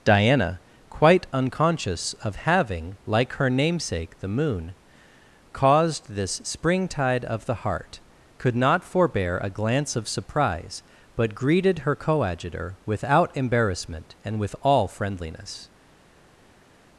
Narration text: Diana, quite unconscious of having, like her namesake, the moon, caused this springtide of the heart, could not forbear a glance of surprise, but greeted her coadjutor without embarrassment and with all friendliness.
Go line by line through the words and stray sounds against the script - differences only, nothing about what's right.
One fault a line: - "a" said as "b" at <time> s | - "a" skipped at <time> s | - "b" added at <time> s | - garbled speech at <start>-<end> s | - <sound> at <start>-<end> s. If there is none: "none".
none